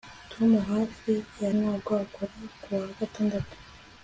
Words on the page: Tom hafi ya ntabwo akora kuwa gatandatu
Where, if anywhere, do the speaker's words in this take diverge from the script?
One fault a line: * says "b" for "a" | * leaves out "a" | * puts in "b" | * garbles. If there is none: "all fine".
all fine